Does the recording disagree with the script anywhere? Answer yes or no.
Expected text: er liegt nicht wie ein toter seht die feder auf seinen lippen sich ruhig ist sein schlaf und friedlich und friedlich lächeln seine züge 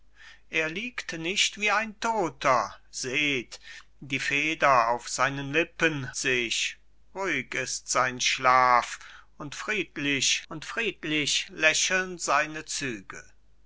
no